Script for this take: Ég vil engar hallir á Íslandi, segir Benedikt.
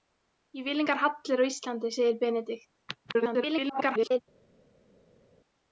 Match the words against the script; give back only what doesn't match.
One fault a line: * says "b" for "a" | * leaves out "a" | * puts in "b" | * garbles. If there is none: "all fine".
* garbles